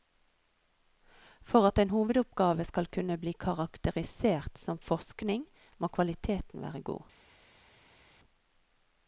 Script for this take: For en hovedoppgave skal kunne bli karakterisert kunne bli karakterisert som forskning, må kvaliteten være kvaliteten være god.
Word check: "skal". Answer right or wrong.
right